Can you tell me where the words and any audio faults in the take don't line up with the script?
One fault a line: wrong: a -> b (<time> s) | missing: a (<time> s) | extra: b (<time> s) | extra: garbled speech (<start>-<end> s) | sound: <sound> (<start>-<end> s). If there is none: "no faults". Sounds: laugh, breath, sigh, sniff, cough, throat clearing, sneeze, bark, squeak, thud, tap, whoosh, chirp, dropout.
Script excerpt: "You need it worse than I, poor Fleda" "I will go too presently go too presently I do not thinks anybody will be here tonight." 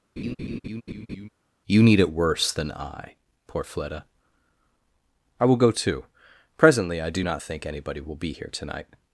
sound: laugh (0.2-1.3 s)
missing: go too presently (7.0 s)
wrong: thinks -> think (7.4 s)